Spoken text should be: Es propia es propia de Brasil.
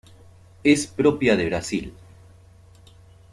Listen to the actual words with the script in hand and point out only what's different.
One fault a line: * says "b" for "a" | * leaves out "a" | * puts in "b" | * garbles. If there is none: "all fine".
* leaves out "es propia"